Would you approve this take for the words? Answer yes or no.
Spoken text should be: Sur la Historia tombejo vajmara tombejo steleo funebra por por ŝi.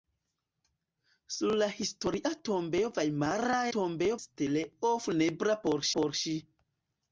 yes